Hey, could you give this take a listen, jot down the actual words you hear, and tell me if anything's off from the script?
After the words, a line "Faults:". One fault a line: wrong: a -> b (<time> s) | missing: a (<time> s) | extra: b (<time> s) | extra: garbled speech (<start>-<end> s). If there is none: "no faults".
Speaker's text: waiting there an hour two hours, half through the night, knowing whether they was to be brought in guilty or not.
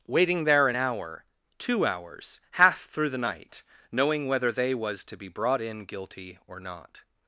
waiting there an hour two hours, half through the night, knowing whether they was to be brought in guilty or not.
Faults:
no faults